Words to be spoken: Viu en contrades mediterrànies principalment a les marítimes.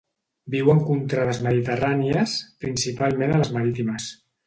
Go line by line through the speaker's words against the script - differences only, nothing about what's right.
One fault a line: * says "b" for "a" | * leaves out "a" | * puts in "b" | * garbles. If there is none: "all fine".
all fine